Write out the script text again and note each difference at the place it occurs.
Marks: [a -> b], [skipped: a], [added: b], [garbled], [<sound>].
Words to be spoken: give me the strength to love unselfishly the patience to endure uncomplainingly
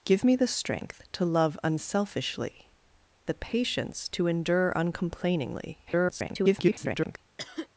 give me the strength to love unselfishly the patience to endure uncomplainingly [garbled] [cough]